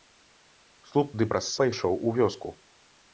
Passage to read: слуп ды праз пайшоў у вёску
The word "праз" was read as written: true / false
true